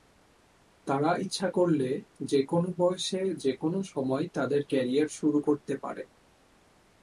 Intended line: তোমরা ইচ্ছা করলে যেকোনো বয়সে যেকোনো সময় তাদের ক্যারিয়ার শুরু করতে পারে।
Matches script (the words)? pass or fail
fail